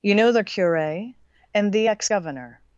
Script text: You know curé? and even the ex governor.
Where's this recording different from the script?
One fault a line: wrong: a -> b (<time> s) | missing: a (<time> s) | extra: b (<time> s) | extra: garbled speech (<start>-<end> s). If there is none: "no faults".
extra: the (0.3 s)
missing: even (1.7 s)